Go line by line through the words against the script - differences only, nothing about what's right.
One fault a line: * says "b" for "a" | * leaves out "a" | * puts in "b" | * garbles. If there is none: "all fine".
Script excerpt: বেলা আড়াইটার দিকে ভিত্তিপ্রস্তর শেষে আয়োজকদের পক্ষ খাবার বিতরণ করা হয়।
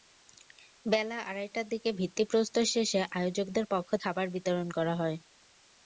all fine